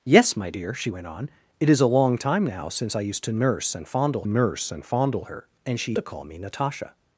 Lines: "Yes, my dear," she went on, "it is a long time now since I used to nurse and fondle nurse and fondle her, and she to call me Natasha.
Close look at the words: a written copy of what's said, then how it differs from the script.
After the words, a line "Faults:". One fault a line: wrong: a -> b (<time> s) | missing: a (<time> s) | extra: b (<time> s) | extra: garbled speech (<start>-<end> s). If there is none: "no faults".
"Yes, my dear," she went on, "it is a long time now since I used to nurse and fondle nurse and fondle her, and she to call me Natasha.
Faults:
no faults